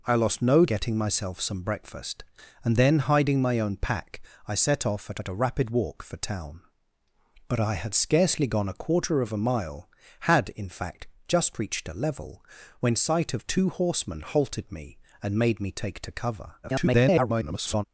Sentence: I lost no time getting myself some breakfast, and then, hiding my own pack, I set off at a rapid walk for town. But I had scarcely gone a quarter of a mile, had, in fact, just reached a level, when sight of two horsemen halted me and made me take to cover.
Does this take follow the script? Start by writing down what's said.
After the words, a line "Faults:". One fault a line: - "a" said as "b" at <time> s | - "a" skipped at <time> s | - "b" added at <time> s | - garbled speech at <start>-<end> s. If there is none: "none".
I lost no getting myself some breakfast, and then, hiding my own pack, I set off at at a rapid walk for town. But I had scarcely gone a quarter of a mile, had, in fact, just reached a level, when sight of two horsemen halted me and made me take to cover. [garbled]
Faults:
- "time" skipped at 0.7 s
- "at" added at 5.2 s
- garbled speech at 16.6-17.8 s